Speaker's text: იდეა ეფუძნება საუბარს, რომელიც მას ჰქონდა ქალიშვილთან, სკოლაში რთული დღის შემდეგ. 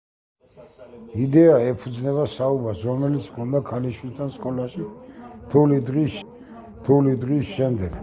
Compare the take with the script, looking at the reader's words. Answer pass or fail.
fail